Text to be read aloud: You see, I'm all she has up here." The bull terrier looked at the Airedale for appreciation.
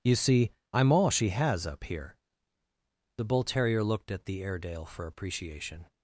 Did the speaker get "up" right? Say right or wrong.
right